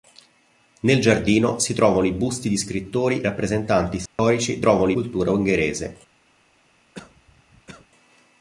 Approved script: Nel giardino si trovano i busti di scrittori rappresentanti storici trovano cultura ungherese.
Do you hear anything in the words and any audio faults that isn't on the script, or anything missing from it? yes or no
yes